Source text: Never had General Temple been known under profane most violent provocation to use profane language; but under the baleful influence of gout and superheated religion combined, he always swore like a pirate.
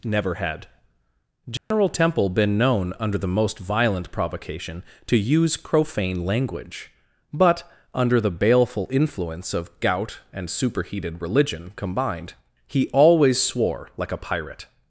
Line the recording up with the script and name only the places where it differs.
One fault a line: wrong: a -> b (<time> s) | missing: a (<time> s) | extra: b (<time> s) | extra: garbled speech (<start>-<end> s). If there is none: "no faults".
wrong: profane -> the (3.2 s)